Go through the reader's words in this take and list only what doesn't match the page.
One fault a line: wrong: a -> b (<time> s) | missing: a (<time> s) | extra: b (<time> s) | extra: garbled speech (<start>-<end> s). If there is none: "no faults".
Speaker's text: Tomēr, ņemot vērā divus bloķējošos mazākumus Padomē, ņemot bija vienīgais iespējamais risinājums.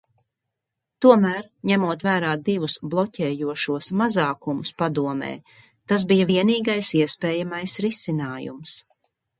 wrong: ņemot -> tas (5.9 s)